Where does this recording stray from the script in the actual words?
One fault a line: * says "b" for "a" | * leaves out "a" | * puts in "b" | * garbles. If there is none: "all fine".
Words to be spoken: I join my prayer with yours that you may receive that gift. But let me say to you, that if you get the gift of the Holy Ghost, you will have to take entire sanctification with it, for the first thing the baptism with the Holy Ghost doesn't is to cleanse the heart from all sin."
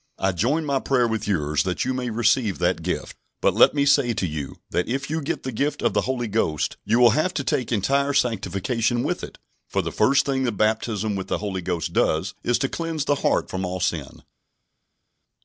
* says "does" for "doesn't"